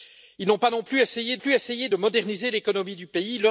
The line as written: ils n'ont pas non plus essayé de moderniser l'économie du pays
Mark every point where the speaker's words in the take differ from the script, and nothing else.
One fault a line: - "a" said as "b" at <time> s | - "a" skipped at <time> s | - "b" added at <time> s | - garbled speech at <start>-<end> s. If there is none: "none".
- "plus essayé" added at 1.4 s